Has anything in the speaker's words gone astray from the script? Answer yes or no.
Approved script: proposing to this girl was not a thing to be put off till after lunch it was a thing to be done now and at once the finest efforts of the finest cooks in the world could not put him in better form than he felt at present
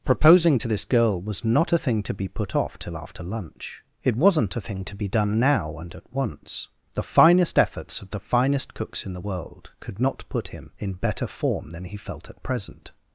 yes